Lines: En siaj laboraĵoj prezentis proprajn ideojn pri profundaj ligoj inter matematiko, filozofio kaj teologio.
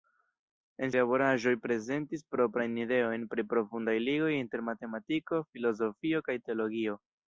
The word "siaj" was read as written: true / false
false